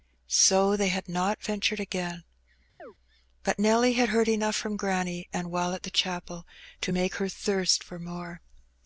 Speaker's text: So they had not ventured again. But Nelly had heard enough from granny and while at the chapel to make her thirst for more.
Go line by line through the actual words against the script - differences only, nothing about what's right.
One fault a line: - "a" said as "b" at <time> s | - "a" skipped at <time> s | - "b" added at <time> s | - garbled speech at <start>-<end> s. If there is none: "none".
none